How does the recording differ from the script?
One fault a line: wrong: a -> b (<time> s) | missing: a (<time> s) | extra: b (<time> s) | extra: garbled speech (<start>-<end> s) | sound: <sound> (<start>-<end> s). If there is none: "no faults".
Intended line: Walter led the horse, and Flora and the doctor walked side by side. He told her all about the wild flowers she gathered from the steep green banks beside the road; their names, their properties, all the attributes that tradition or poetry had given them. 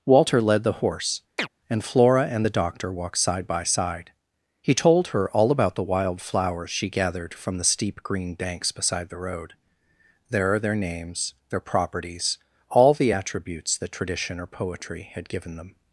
sound: chirp (1.4-1.5 s)
extra: there are (10.3 s)